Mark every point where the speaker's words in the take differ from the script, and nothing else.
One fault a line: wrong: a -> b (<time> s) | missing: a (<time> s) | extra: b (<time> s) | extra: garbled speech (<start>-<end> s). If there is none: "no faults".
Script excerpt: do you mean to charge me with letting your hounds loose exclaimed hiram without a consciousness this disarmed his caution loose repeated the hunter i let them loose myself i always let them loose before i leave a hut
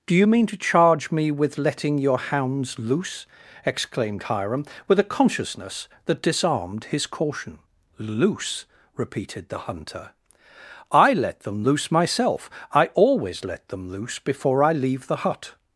wrong: without -> with (4.9 s)
wrong: this -> that (6.0 s)
wrong: a -> the (15.1 s)